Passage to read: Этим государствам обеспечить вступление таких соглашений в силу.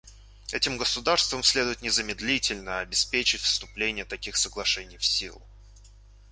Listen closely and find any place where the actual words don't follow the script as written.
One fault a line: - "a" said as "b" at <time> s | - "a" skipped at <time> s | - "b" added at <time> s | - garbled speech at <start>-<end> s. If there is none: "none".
- "следует незамедлительно" added at 1.4 s